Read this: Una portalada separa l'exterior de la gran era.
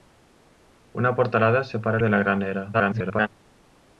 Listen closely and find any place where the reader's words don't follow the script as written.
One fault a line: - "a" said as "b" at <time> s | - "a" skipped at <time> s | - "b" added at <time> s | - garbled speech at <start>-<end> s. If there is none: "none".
- "l'exterior" skipped at 2.0 s
- garbled speech at 2.7-3.3 s